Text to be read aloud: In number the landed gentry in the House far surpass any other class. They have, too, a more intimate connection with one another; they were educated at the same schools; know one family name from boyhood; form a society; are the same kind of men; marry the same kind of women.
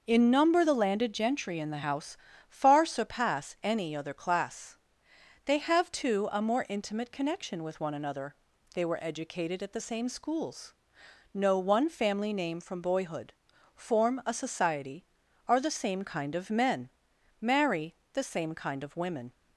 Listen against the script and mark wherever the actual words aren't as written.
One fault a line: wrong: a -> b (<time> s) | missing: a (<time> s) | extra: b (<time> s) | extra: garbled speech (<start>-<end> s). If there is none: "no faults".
no faults